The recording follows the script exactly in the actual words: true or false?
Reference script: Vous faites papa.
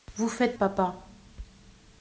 true